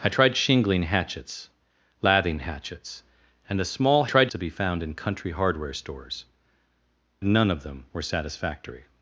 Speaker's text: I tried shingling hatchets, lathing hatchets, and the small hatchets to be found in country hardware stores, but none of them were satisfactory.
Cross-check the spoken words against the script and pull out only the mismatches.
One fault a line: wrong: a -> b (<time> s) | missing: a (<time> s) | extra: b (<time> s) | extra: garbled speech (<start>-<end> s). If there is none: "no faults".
wrong: hatchets -> tried (4.1 s)
missing: but (6.3 s)